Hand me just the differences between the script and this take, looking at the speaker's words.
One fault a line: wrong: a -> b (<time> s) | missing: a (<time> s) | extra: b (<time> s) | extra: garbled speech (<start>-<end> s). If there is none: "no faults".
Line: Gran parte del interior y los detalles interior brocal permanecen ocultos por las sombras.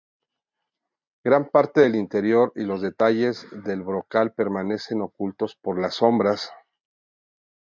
wrong: interior -> del (3.6 s)